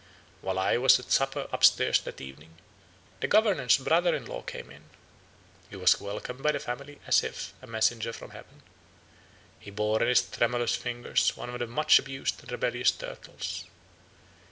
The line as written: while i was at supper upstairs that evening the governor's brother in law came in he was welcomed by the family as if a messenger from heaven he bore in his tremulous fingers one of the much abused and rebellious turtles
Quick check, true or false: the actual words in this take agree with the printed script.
true